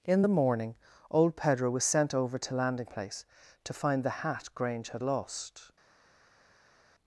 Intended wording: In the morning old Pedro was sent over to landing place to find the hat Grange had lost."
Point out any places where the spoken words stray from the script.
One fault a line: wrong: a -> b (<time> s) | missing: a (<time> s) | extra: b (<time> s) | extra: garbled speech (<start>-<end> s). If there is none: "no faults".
no faults